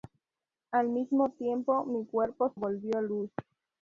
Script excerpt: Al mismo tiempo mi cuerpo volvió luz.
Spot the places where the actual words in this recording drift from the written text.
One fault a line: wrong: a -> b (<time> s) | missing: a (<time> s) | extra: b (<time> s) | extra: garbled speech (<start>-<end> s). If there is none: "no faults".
no faults